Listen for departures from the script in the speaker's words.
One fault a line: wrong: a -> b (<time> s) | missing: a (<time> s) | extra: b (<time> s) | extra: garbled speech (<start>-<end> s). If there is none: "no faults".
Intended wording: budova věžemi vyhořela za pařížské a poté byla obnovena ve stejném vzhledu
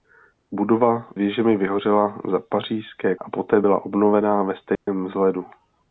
no faults